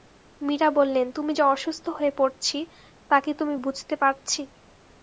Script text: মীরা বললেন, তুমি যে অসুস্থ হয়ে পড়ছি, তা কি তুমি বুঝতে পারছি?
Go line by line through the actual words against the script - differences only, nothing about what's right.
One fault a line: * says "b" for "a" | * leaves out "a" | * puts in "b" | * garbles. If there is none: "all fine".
all fine